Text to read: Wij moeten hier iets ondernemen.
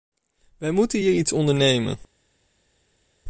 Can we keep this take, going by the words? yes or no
yes